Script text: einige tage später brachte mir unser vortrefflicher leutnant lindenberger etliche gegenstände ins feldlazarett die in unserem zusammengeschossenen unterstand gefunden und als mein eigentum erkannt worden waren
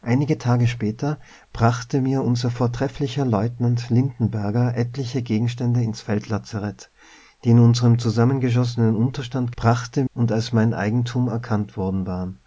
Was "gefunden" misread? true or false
true